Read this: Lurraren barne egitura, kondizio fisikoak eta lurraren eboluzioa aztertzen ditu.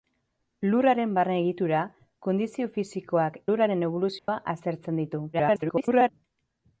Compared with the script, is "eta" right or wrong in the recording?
wrong